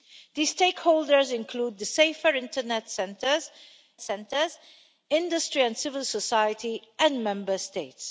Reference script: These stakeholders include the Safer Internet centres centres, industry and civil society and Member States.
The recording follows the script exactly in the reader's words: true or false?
true